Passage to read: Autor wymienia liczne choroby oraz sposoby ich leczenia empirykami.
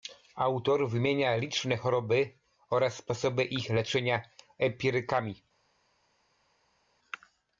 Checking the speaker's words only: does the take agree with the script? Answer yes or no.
yes